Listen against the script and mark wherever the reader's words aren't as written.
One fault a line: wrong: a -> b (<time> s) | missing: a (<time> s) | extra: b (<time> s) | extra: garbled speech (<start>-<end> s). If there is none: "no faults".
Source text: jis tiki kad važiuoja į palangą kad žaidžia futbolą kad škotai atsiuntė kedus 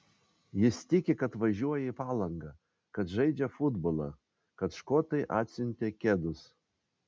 no faults